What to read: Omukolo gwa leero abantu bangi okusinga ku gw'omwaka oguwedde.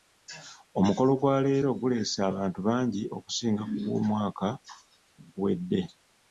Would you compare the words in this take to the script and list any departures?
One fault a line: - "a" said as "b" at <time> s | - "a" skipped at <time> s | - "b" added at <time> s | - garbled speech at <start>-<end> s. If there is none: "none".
- "guleese" added at 1.8 s